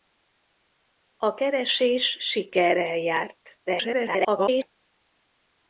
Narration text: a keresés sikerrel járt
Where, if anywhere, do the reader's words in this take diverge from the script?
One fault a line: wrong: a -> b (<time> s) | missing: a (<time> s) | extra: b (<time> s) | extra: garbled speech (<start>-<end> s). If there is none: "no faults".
extra: garbled speech (3.7-4.8 s)